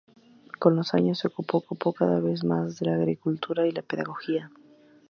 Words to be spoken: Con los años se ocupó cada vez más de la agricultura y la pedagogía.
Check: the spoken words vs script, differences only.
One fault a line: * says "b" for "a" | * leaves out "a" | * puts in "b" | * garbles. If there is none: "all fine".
* puts in "ocupó"